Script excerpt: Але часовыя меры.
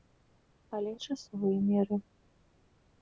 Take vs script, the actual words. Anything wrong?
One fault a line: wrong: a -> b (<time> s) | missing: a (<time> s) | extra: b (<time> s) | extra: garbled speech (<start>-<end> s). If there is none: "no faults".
no faults